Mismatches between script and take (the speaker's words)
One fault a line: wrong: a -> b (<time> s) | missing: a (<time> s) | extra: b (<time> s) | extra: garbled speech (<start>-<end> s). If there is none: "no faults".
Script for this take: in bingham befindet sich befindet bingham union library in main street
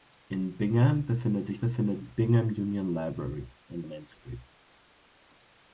no faults